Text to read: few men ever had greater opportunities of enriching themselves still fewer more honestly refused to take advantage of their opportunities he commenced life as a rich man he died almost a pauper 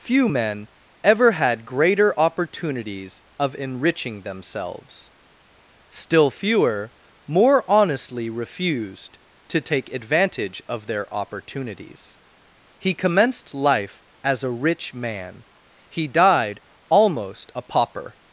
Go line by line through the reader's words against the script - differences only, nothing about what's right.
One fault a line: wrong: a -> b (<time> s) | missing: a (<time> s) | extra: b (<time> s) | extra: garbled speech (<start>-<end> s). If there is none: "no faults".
no faults